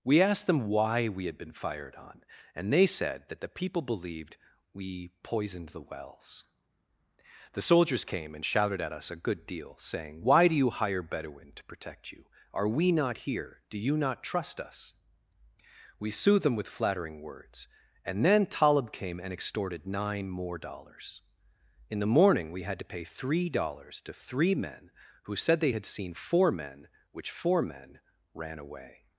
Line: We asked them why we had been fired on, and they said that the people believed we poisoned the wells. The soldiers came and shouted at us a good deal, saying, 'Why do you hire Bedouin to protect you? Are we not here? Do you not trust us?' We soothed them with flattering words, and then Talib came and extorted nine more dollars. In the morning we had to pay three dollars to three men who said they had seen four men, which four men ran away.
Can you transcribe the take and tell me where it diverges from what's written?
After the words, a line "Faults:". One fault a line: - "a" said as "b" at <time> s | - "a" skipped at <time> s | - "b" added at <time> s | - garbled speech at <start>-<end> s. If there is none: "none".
We asked them why we had been fired on, and they said that the people believed we poisoned the wells. The soldiers came and shouted at us a good deal, saying, 'Why do you hire Bedouin to protect you? Are we not here? Do you not trust us?' We soothed them with flattering words, and then Talib came and extorted nine more dollars. In the morning we had to pay three dollars to three men who said they had seen four men, which four men ran away.
Faults:
none